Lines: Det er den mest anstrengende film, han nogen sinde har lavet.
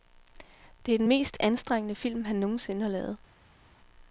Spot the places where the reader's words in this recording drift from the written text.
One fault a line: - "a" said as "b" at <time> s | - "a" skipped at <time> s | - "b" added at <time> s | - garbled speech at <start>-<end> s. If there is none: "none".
none